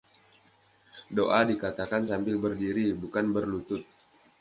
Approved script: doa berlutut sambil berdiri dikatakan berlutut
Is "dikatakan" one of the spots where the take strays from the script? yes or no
yes